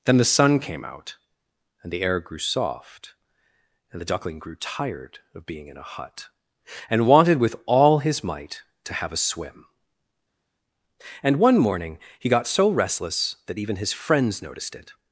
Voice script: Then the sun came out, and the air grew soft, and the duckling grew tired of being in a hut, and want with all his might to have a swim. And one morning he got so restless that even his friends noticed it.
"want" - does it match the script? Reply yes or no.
no